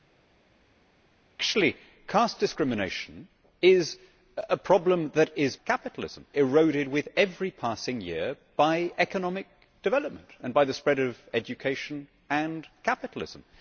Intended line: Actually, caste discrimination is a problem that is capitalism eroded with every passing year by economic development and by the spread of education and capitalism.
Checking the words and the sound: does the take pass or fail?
pass